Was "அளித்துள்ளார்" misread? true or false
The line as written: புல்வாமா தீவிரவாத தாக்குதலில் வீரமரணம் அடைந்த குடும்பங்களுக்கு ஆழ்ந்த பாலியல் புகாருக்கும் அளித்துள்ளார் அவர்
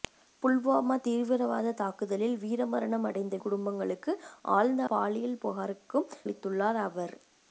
false